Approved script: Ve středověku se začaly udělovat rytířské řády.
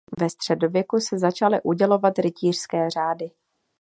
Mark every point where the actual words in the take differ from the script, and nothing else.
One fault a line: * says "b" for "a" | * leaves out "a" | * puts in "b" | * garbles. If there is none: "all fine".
all fine